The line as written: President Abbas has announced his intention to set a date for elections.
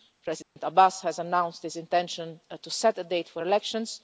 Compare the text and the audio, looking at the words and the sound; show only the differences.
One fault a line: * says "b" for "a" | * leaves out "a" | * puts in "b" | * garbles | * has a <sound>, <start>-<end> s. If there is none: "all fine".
* has a dropout, 0.4-0.6 s